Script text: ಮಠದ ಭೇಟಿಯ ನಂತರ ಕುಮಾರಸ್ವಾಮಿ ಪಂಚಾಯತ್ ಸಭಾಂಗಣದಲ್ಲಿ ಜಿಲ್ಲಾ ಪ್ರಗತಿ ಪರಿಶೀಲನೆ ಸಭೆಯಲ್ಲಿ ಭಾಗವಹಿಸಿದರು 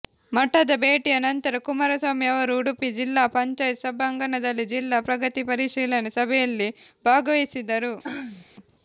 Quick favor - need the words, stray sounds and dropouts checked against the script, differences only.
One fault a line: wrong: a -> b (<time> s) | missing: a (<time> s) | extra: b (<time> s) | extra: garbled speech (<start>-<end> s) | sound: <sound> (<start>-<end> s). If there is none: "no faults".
extra: ಅವರು ಉಡುಪಿ ಜಿಲ್ಲಾ (2.3 s)
sound: throat clearing (8.0-8.5 s)